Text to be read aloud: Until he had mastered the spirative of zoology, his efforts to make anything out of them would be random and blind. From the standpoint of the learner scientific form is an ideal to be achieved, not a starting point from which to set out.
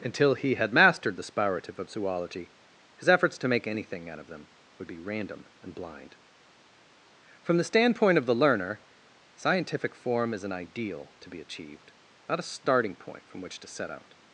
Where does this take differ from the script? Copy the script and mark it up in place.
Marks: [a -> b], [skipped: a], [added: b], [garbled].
Until he had mastered the spirative of zoology, his efforts to make anything out of them would be random and blind. From the standpoint of the learner scientific form is an ideal to be achieved, not a starting point from which to set out.